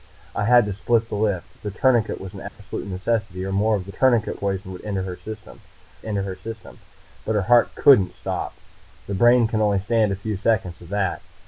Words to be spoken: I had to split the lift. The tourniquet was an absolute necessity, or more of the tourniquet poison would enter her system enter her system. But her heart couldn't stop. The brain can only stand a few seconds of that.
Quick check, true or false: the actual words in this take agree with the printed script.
true